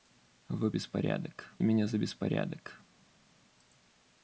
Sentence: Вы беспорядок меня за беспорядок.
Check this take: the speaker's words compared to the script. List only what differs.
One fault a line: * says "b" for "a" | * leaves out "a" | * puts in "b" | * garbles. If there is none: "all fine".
all fine